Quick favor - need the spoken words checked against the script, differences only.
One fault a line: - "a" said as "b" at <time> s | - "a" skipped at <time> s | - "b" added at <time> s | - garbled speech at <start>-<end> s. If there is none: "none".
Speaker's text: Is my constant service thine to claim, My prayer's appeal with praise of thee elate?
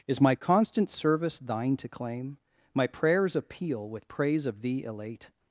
none